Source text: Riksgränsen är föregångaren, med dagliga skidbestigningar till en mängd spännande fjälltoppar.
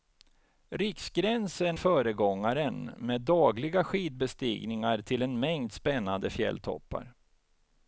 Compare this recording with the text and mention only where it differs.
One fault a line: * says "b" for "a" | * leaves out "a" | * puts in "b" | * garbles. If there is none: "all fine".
* leaves out "är"